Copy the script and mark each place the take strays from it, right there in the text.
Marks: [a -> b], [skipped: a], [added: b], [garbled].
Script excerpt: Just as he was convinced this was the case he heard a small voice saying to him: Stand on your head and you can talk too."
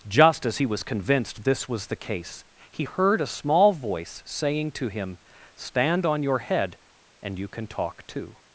Just as he was convinced this was the case he heard a small voice saying to him: Stand on your head and you can talk too."